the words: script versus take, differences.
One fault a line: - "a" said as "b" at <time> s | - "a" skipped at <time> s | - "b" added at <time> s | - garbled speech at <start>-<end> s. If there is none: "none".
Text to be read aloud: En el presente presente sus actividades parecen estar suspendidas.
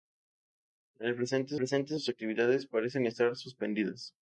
none